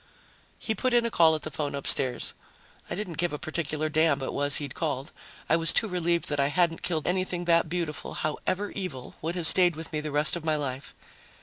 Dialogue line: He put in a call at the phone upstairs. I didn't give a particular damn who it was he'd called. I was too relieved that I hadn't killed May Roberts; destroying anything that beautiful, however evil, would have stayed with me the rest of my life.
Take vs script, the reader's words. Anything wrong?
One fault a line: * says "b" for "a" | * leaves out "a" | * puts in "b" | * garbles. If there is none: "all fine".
* leaves out "who"
* leaves out "May Roberts destroying"